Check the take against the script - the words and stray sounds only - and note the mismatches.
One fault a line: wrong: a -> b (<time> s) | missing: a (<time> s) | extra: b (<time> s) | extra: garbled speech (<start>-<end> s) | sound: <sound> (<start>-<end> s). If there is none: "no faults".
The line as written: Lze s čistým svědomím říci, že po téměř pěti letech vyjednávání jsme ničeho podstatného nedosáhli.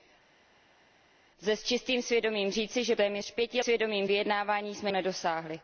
missing: po (2.9 s)
wrong: letech -> svědomím (3.6 s)
missing: ničeho podstatného (4.9 s)